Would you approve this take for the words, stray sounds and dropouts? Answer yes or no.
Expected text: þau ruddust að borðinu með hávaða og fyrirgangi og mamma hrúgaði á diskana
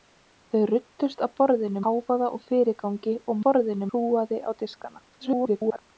no